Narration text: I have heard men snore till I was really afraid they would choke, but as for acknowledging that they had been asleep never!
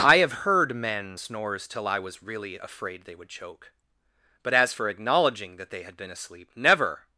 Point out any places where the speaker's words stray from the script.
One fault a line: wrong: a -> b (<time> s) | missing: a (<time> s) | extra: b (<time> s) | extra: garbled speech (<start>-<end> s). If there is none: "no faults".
wrong: snore -> snores (1.2 s)